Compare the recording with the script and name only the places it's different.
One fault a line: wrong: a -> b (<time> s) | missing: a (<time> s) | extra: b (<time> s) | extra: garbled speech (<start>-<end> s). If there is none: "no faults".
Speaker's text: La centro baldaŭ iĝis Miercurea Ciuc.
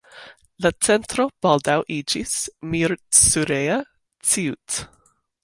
no faults